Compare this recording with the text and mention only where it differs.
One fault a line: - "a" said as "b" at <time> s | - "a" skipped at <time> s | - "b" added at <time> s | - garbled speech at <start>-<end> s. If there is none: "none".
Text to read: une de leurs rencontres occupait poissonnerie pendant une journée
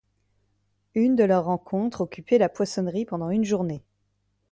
- "la" added at 2.4 s